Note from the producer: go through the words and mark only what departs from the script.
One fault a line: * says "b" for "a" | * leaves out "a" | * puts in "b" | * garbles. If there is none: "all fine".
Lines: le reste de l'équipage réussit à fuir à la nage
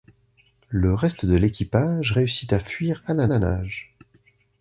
* puts in "la"